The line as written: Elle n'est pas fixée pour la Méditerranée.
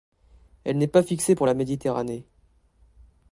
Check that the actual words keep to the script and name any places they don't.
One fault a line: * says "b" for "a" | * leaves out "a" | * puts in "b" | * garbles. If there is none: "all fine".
all fine